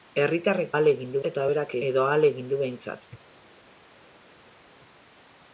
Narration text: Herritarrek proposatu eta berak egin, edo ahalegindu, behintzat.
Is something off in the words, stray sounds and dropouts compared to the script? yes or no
yes